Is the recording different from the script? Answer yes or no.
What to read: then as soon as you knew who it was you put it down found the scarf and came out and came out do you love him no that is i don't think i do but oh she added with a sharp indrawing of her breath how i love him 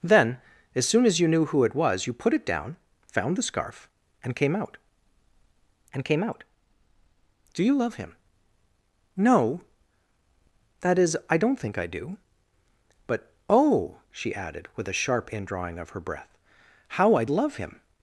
no